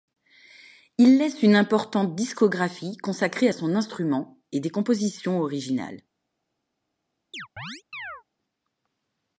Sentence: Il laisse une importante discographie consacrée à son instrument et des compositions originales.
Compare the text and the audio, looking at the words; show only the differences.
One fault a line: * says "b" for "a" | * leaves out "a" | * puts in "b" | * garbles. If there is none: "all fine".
all fine